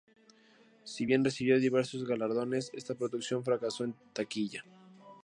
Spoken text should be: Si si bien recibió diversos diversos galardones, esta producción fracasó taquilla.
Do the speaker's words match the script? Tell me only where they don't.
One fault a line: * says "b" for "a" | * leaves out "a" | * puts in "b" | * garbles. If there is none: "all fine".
* leaves out "si"
* leaves out "diversos"
* puts in "en"